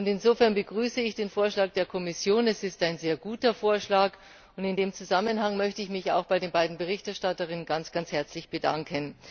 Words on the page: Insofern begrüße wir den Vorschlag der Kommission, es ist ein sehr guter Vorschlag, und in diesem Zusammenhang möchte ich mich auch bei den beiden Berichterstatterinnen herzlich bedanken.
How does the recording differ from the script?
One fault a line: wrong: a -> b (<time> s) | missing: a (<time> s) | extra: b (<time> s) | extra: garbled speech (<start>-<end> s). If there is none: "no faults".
wrong: wir -> ich (1.0 s)
extra: ganz (7.7 s)